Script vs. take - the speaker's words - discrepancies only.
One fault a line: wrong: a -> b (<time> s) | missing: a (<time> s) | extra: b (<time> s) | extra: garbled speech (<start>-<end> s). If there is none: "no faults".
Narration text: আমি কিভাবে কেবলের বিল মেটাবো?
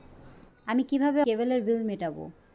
no faults